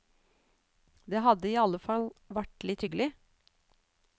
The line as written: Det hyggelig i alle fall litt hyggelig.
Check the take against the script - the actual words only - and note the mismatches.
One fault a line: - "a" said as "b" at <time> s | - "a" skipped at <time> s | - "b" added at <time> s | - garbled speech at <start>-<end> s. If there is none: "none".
- "hyggelig" said as "hadde" at 1.2 s
- "vært" added at 2.4 s